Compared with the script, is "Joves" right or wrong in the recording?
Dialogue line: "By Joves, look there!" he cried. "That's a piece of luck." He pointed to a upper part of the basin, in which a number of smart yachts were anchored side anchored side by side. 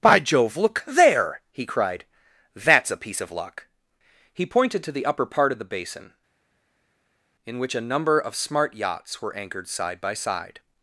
wrong